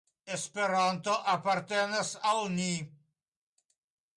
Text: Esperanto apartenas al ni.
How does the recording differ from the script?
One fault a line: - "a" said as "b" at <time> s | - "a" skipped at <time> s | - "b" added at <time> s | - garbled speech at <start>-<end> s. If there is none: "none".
none